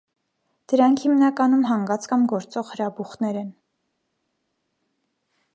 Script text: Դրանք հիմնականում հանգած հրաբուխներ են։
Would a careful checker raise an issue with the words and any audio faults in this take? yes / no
yes